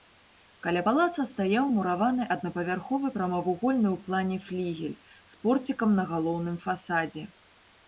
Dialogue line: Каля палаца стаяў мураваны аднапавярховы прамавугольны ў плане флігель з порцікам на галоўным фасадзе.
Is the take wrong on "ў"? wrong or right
right